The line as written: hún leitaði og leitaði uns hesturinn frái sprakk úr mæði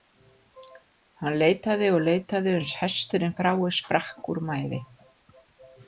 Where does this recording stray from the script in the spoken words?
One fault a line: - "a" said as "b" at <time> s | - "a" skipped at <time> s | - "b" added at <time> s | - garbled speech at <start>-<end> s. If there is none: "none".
- "hún" said as "hann" at 1.2 s